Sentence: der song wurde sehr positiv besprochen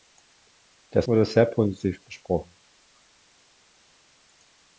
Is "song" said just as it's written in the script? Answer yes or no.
no